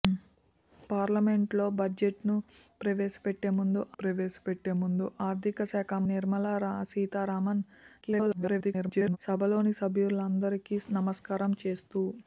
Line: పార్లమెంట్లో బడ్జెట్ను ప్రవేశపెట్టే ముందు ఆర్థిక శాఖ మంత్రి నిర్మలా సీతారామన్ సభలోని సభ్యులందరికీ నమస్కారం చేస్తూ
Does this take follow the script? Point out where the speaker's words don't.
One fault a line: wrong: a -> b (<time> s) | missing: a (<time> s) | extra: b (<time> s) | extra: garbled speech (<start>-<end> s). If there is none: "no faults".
extra: ప్రవేశపెట్టే ముందు (4.0 s)
missing: మంత్రి (6.0 s)
extra: garbled speech (8.0-9.2 s)